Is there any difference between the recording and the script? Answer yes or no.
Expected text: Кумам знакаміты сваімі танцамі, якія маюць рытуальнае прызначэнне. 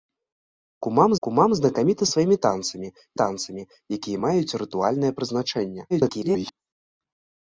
yes